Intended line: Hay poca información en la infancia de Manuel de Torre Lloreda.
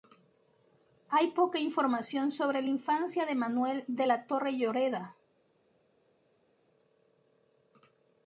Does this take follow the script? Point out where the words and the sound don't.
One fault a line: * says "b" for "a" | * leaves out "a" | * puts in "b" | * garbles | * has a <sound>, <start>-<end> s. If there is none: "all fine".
* says "sobre" for "en"
* puts in "la"